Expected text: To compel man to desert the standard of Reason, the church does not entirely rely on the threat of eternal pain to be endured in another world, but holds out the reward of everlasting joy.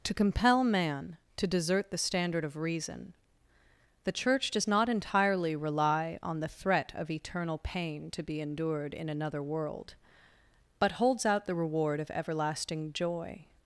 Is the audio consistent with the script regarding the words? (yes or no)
yes